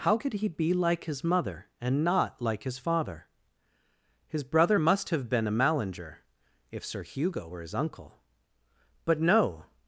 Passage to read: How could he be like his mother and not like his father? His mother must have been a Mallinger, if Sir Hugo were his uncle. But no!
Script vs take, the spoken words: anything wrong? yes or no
yes